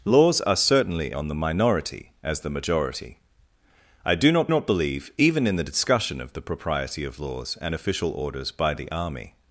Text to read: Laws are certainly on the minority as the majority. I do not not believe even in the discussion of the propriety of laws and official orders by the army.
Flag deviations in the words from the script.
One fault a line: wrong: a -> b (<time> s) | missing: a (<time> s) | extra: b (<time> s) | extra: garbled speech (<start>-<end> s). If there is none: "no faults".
no faults